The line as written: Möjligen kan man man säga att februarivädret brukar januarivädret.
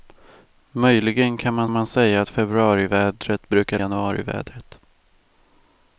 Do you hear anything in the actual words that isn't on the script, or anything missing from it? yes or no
no